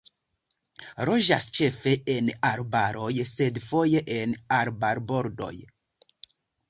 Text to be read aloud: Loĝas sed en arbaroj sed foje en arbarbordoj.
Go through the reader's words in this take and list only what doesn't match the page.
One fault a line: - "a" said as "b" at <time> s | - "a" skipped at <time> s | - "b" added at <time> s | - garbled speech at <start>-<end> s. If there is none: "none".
- "sed" said as "ĉefe" at 1.6 s